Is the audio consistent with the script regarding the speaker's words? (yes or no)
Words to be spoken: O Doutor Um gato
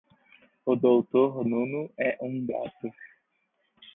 no